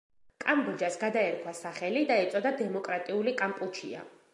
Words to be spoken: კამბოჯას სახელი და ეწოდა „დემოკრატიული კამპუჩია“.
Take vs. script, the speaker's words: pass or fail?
fail